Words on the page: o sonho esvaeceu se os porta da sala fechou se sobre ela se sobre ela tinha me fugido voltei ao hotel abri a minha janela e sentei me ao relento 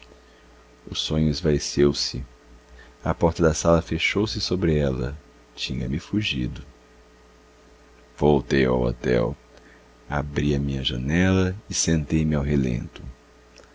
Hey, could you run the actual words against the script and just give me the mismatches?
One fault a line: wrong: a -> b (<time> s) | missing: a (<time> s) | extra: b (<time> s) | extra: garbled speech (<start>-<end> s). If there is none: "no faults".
wrong: os -> a (3.0 s)
missing: se sobre ela (5.1 s)